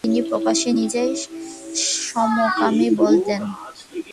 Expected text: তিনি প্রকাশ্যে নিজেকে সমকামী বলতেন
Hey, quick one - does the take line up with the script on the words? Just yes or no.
yes